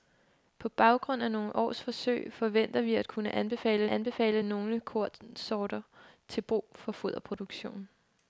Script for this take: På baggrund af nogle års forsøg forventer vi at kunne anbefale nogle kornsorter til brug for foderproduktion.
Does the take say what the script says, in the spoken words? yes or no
no